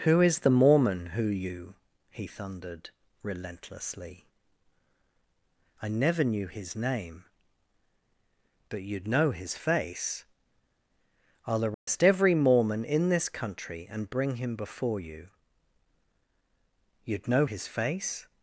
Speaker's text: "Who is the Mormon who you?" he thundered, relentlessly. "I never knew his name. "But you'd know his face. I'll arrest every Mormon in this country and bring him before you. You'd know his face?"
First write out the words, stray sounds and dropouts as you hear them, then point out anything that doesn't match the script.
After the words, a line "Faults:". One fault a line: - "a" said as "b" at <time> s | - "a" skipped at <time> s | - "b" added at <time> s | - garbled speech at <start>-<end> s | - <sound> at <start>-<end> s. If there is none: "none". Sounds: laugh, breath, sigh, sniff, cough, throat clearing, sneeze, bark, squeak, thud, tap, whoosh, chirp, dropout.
"Who is the Mormon who you?" he thundered, relentlessly. "I never knew his name. "But you'd know his face. I'll arrest every Mormon in this country and bring him before you. You'd know his face?"
Faults:
- dropout at 11.7-11.9 s